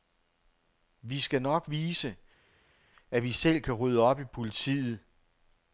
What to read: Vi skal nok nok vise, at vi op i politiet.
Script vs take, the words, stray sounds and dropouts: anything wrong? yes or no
yes